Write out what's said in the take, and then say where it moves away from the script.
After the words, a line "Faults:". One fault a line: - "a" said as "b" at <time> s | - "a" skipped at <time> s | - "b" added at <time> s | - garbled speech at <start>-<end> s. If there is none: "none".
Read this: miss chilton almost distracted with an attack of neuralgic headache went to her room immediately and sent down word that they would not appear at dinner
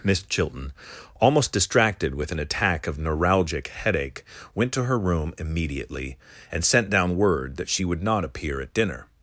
miss chilton almost distracted with an attack of neuralgic headache went to her room immediately and sent down word that she would not appear at dinner
Faults:
- "they" said as "she" at 7.7 s